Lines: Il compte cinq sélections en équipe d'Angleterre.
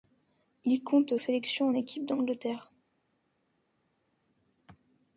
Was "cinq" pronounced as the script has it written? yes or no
no